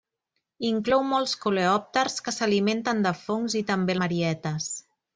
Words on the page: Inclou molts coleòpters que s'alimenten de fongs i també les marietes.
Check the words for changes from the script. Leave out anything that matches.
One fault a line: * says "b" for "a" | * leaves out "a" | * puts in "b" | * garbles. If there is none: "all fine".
* leaves out "les"